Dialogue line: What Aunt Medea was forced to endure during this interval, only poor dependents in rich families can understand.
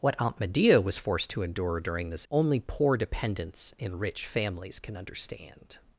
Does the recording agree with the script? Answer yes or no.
no